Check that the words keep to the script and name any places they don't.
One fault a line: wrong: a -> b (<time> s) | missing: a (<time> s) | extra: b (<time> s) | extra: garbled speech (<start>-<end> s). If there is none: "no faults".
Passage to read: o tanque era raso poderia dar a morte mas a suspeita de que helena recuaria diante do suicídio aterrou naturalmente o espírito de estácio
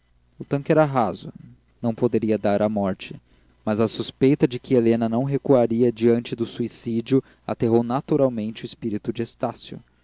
extra: não (1.8 s)
extra: não (5.1 s)